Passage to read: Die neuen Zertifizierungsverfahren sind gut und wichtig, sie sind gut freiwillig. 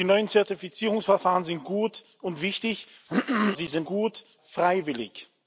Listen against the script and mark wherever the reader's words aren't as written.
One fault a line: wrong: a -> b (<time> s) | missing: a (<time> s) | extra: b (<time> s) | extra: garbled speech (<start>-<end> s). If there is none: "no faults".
no faults